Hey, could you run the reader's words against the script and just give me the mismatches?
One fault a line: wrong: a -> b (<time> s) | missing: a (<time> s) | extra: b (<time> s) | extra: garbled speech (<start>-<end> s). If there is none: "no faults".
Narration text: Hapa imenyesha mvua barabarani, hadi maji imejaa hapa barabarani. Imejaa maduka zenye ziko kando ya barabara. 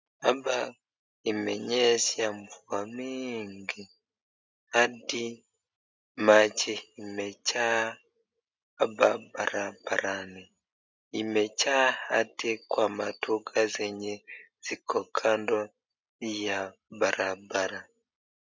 wrong: barabarani -> mingi (2.9 s)
extra: hadi kwa (11.9 s)